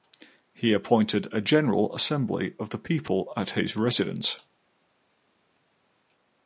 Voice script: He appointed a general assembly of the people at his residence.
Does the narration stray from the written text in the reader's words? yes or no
no